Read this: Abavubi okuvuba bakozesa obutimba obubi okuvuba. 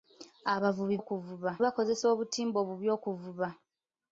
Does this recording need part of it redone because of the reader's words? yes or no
no